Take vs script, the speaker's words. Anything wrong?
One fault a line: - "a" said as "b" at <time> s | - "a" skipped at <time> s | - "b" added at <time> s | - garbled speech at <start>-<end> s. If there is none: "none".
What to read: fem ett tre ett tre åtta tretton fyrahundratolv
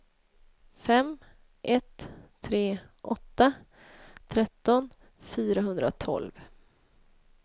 - "ett tre" skipped at 2.8 s